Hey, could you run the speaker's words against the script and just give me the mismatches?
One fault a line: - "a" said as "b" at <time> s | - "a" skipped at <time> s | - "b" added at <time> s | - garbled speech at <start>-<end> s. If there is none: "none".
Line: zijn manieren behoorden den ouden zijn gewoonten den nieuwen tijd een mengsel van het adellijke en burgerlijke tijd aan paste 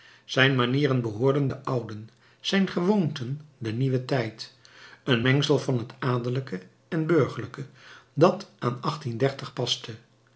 - "tijd" said as "dat" at 8.1 s